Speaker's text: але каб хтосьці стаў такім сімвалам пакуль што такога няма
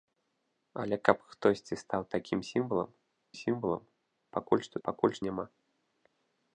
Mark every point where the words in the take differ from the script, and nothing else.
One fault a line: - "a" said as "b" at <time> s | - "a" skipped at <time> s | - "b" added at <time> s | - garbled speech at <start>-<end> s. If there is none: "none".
- "сімвалам" added at 3.4 s
- "такога" said as "пакуль" at 4.9 s